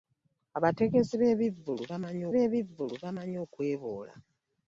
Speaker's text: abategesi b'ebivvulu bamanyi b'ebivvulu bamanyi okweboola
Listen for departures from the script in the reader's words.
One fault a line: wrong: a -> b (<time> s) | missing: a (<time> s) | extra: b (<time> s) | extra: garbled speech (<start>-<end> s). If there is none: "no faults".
no faults